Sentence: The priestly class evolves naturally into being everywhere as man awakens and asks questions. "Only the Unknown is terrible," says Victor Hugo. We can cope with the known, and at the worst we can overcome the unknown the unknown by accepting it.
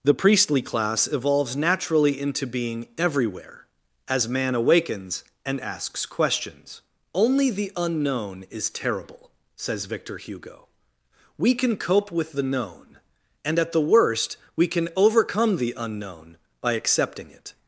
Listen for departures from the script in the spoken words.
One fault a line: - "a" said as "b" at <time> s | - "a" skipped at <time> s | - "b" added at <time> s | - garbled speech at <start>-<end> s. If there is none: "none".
- "the unknown" skipped at 16.4 s